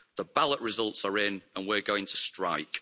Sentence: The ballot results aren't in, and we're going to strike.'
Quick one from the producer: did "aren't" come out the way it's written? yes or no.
no